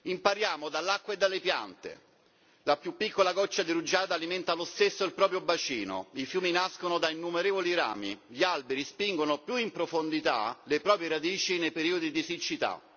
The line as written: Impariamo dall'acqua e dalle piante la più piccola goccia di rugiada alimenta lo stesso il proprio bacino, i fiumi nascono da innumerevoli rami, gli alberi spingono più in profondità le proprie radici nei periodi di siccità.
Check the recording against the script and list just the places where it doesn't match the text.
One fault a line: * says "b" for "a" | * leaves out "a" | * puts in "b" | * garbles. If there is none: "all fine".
all fine